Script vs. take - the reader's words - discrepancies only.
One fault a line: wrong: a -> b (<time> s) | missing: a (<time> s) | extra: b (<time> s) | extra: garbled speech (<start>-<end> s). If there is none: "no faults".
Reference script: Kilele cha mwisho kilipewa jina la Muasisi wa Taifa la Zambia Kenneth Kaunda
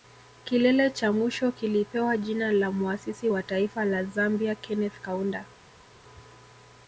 no faults